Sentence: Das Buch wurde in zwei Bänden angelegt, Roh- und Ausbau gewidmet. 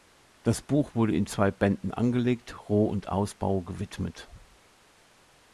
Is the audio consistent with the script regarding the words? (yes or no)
yes